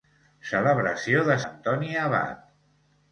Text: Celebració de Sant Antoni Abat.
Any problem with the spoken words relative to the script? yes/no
yes